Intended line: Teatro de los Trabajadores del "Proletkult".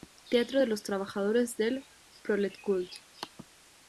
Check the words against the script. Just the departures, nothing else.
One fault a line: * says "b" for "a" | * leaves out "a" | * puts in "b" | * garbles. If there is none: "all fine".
all fine